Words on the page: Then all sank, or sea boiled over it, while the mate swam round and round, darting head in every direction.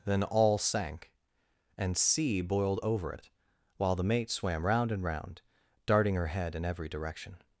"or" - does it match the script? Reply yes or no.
no